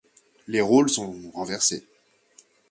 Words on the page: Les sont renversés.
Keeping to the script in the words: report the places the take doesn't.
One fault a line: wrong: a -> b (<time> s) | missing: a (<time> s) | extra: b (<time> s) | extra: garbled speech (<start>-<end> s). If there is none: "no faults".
extra: rôles (0.6 s)